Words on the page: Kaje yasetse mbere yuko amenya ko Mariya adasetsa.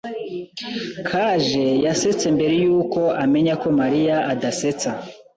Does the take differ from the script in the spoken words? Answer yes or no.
no